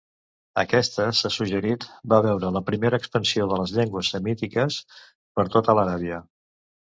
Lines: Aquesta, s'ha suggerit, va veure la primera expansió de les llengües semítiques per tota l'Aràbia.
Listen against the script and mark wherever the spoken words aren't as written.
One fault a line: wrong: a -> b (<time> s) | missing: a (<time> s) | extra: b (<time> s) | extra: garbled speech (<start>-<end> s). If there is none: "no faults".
no faults